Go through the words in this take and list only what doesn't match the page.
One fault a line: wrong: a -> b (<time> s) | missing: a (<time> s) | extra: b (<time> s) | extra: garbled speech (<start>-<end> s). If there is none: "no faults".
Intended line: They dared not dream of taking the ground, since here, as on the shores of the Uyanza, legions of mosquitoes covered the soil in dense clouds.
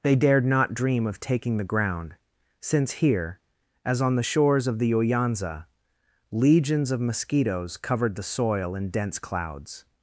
no faults